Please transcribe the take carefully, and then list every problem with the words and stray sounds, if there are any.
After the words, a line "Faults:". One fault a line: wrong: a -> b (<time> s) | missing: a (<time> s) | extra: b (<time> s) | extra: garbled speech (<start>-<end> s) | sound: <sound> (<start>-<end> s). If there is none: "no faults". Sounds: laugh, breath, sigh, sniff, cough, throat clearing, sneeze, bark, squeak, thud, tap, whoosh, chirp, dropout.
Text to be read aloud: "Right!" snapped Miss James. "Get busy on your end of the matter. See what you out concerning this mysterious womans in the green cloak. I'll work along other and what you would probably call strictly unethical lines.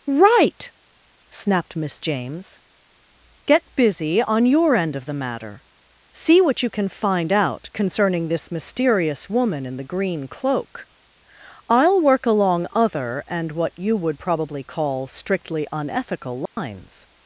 "Right!" snapped Miss James. "Get busy on your end of the matter. See what you can find out concerning this mysterious woman in the green cloak. I'll work along other and what you would probably call strictly unethical lines.
Faults:
extra: can find (6.7 s)
wrong: womans -> woman (9.3 s)
sound: dropout (16.5-16.6 s)